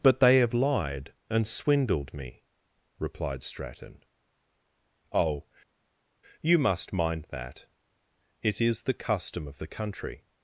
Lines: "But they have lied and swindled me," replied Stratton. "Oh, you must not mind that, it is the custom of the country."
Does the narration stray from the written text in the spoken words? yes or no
yes